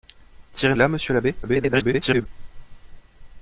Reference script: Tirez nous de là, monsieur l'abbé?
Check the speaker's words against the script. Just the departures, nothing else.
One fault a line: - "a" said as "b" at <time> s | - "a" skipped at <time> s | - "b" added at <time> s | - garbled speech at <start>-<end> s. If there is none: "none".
- "nous" skipped at 0.7 s
- garbled speech at 1.4-2.3 s